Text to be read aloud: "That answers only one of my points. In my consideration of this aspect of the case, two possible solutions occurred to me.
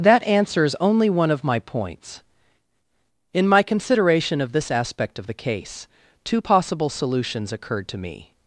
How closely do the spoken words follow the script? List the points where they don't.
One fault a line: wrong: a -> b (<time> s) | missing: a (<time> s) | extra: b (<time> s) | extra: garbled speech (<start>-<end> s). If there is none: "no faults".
no faults